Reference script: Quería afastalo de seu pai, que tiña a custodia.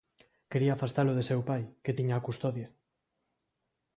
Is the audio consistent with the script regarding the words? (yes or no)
yes